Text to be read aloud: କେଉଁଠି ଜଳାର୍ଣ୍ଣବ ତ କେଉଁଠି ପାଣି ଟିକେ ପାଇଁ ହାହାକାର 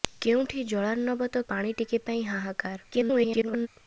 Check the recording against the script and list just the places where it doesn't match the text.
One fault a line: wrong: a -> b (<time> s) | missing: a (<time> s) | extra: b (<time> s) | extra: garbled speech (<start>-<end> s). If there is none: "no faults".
missing: କେଉଁଠି (1.4 s)
extra: garbled speech (2.9-3.7 s)